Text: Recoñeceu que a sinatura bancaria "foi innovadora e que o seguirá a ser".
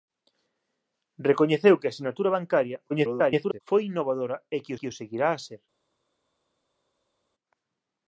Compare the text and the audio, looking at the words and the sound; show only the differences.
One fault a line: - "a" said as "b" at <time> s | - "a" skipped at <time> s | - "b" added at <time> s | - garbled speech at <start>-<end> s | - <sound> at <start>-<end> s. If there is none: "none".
- garbled speech at 2.9-3.6 s
- "que" added at 4.8 s